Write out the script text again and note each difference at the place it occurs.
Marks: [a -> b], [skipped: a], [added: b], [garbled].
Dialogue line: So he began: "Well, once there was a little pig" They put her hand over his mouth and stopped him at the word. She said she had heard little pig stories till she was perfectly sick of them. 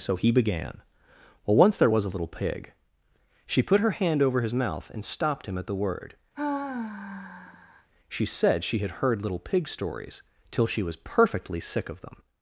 So he began: "Well, once there was a little pig" [They -> She] put her hand over his mouth and stopped him at the word. She said she had heard little pig stories till she was perfectly sick of them.